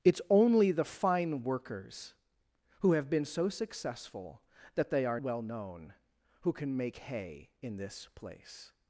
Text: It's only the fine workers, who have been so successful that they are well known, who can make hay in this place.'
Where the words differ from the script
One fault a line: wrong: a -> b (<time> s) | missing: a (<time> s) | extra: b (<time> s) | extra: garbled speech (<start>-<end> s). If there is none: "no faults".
no faults